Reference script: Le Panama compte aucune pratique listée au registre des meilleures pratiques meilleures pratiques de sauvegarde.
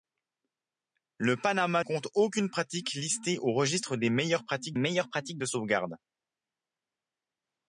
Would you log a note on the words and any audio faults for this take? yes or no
no